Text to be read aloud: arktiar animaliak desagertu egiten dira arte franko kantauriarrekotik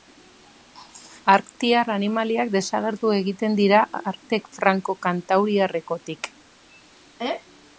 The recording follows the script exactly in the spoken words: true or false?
true